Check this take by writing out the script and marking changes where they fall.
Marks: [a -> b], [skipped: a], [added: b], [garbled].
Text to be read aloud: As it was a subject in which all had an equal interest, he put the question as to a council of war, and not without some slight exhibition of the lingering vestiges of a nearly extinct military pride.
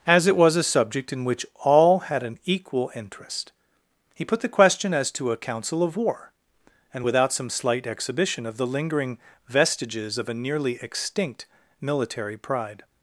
As it was a subject in which all had an equal interest, he put the question as to a council of war, and [skipped: not] without some slight exhibition of the lingering vestiges of a nearly extinct military pride.